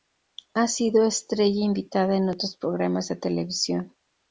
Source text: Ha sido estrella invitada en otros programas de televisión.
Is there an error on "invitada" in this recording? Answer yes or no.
no